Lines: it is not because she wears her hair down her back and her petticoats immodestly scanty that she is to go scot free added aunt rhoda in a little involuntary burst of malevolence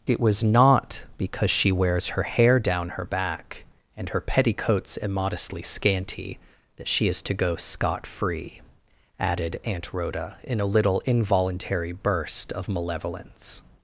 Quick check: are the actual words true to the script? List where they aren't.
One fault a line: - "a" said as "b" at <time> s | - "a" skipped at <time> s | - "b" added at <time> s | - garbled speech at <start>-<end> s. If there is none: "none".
- "is" said as "was" at 0.2 s